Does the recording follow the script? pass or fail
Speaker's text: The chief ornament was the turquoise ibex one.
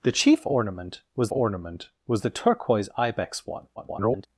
fail